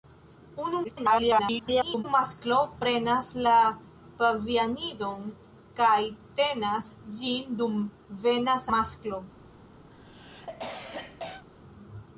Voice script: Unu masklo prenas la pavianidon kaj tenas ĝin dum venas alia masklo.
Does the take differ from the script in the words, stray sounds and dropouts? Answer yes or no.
yes